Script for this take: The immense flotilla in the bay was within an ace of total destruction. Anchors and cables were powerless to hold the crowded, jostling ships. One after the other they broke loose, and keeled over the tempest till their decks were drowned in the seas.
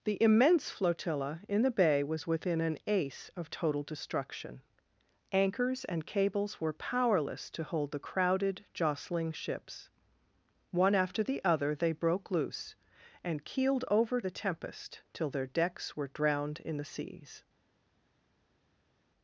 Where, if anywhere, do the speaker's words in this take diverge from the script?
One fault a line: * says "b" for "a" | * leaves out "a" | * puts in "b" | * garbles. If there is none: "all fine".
all fine